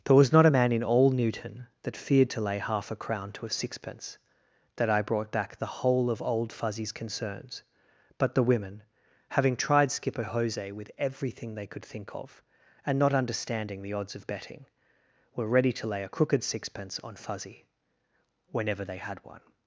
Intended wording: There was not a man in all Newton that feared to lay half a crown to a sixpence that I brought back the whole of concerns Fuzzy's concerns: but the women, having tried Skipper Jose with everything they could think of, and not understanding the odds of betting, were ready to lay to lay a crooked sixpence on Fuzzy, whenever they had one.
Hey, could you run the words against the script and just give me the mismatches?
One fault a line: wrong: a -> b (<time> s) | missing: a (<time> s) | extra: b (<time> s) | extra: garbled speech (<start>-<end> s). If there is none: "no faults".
wrong: concerns -> old (6.2 s)
missing: to lay (16.0 s)